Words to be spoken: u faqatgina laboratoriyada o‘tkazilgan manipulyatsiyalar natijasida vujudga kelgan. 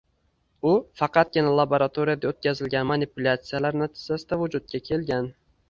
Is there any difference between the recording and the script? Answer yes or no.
no